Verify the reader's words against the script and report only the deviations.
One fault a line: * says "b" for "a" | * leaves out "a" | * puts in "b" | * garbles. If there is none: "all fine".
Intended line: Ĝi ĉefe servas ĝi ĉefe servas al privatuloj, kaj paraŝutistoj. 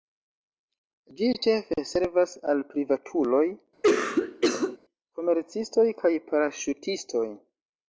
* leaves out "ĝi ĉefe servas"
* puts in "komercistoj"